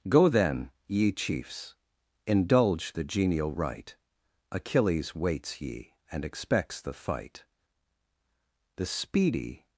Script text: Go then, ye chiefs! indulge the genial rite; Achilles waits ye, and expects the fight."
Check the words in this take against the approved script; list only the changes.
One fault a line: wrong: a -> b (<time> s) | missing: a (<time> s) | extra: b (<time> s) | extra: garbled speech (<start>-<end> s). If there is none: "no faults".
extra: The speedy (8.8 s)